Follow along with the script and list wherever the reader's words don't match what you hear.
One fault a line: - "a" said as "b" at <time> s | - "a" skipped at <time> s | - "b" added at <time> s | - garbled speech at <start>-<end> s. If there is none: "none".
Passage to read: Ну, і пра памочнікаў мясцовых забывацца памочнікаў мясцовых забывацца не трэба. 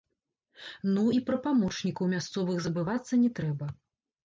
- "памочнікаў мясцовых забывацца" skipped at 3.2 s